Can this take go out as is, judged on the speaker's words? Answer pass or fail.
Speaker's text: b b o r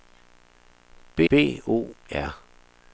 pass